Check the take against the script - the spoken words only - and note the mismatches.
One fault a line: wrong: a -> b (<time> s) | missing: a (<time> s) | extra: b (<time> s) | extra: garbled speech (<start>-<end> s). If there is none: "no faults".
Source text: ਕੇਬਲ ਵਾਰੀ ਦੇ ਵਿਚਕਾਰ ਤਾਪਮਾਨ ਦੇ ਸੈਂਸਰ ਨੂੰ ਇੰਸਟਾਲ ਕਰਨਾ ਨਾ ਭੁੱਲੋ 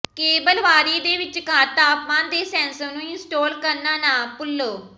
no faults